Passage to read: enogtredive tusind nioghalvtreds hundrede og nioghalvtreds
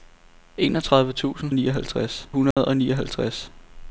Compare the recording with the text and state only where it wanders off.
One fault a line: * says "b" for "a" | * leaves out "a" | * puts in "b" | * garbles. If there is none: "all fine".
all fine